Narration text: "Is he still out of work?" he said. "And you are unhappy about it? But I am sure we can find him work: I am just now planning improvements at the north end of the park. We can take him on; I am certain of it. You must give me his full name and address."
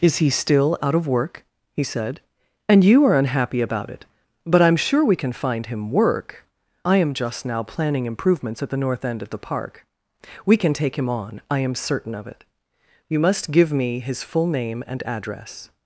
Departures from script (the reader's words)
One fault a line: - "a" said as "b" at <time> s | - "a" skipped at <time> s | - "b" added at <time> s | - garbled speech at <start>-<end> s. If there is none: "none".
none